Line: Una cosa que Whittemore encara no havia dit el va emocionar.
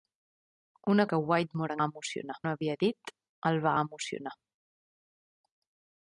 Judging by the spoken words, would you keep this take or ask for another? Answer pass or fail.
fail